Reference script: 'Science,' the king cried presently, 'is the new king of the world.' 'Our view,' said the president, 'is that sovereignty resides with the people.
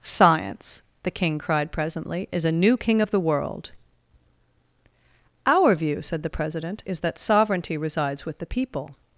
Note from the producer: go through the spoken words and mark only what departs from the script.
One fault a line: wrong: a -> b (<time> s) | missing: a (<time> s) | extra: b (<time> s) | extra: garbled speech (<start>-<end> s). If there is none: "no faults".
wrong: the -> a (2.5 s)